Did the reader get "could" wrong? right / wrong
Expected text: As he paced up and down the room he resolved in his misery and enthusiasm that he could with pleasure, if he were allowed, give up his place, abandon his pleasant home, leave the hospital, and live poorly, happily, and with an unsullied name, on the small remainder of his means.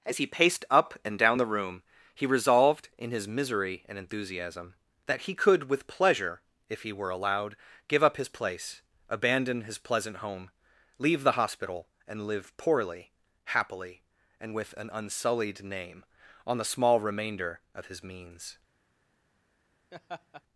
right